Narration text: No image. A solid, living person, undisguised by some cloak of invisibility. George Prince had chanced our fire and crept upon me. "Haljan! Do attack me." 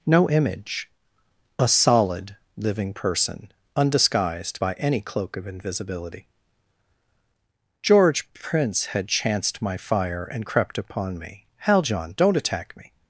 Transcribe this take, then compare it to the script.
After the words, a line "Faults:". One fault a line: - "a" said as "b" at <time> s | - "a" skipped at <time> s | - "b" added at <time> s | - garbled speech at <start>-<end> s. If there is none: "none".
No image. A solid, living person, undisguised by any cloak of invisibility. George Prince had chanced my fire and crept upon me. "Haljan! Don't attack me."
Faults:
- "some" said as "any" at 4.7 s
- "our" said as "my" at 9.6 s
- "Do" said as "Don't" at 12.2 s